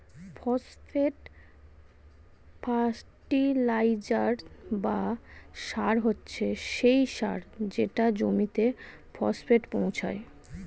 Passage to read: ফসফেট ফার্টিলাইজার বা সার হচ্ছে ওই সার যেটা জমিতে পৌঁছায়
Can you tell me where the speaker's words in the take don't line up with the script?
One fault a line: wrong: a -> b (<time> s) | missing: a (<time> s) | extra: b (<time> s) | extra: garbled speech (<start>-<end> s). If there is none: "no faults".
wrong: ওই -> সেই (6.7 s)
extra: ফসফেট (9.2 s)